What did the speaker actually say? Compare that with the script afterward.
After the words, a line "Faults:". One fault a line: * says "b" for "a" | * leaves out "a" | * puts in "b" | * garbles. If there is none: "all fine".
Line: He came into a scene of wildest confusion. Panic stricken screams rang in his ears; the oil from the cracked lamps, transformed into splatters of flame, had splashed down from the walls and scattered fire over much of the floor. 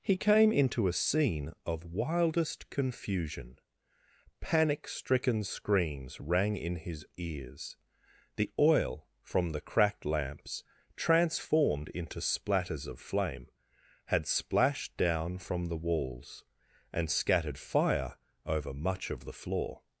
He came into a scene of wildest confusion. Panic stricken screams rang in his ears; the oil from the cracked lamps, transformed into splatters of flame, had splashed down from the walls and scattered fire over much of the floor.
Faults:
all fine